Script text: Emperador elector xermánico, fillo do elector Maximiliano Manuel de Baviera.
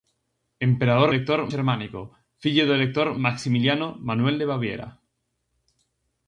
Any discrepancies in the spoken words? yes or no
no